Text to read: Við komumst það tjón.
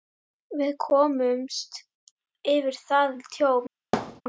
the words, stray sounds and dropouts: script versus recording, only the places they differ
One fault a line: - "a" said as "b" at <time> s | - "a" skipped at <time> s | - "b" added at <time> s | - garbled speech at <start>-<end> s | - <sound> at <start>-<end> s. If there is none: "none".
- "yfir" added at 2.5 s
- thud at 3.9-4.2 s